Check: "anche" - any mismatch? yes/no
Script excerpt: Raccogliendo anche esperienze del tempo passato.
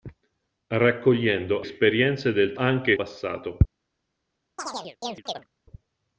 yes